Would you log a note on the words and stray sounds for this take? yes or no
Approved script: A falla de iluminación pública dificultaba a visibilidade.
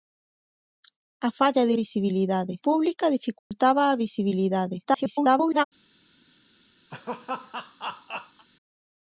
yes